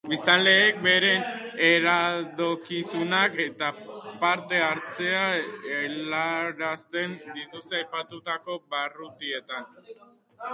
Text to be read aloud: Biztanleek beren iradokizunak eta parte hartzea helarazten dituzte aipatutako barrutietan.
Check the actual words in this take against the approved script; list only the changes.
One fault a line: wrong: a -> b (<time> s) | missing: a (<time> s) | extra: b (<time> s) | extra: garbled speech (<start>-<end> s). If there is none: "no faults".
no faults